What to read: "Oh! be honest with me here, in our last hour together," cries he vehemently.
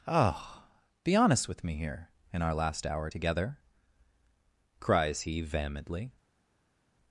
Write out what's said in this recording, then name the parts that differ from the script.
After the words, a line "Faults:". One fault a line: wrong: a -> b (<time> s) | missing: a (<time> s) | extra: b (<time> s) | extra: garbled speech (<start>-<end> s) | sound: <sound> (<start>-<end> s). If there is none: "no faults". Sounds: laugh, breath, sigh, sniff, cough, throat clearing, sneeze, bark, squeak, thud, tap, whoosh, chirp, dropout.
"Oh! be honest with me here, in our last hour together," cries he vehemently.
Faults:
no faults